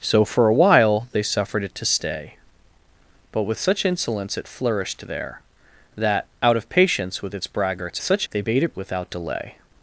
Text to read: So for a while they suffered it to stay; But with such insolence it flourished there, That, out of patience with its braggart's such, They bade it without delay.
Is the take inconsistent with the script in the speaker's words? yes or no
no